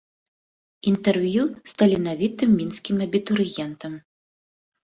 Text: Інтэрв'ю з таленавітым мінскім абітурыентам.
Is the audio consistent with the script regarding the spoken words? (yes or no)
yes